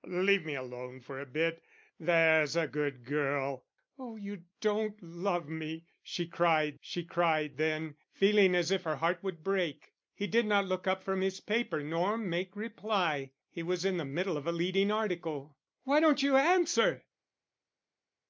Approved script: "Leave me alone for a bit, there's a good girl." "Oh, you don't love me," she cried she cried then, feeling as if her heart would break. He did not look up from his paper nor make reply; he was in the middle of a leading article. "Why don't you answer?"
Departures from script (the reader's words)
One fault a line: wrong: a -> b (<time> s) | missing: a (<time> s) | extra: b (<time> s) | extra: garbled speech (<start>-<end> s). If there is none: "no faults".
no faults